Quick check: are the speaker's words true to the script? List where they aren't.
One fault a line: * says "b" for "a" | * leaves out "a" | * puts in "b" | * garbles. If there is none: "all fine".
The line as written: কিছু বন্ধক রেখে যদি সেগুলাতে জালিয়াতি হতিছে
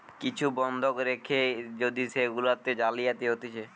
all fine